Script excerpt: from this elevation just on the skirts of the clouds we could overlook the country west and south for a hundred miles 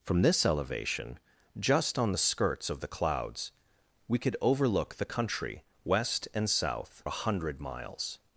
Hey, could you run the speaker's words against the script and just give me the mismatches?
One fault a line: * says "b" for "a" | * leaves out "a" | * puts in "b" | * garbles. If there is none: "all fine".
* leaves out "for"